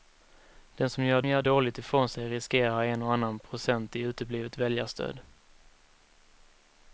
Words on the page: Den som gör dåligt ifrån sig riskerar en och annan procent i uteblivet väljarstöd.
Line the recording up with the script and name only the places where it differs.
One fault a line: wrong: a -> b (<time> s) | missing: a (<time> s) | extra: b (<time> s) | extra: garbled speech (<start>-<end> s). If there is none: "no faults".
extra: gör (1.3 s)